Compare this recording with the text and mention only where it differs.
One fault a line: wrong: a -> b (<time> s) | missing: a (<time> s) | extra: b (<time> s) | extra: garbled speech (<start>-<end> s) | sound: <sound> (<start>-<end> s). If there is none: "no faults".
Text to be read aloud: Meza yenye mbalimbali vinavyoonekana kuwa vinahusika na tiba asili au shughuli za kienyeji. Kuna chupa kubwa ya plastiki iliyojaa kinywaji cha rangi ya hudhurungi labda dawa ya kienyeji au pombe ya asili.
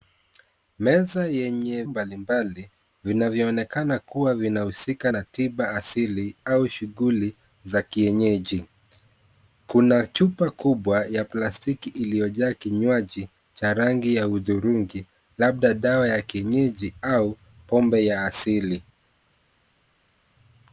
no faults